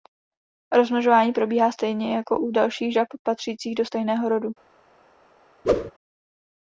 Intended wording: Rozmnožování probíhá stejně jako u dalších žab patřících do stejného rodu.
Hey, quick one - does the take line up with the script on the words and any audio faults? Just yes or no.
no